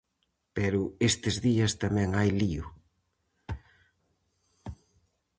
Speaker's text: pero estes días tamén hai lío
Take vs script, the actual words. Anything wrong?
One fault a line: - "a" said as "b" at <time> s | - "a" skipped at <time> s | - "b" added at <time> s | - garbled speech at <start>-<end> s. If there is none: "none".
none